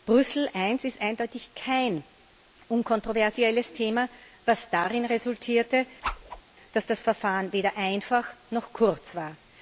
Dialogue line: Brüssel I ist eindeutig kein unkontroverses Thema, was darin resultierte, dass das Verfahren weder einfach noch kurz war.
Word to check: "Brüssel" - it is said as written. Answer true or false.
true